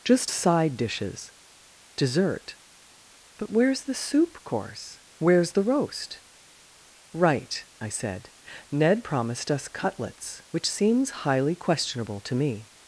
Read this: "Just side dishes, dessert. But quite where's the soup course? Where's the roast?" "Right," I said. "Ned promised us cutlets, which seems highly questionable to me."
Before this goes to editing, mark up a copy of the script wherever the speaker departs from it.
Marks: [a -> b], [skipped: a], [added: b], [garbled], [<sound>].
"Just side dishes, dessert. But [skipped: quite] where's the soup course? Where's the roast?" "Right," I said. "Ned promised us cutlets, which seems highly questionable to me."